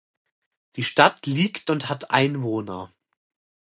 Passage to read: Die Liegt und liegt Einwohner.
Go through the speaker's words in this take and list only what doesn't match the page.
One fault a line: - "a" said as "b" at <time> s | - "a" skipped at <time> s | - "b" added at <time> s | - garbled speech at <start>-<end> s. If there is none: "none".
- "Stadt" added at 0.8 s
- "liegt" said as "hat" at 1.9 s